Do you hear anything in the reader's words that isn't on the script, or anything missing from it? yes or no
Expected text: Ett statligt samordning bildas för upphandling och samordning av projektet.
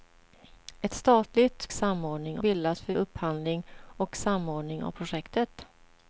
no